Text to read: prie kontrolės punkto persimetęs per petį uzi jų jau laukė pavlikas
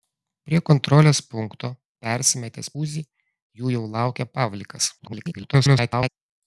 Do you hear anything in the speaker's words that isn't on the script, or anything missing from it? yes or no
yes